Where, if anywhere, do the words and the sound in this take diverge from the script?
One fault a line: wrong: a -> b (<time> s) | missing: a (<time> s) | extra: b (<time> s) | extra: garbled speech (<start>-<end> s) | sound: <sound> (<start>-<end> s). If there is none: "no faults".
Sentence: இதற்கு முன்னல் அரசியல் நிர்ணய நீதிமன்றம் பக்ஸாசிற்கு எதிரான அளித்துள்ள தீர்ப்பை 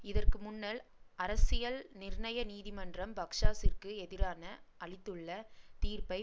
no faults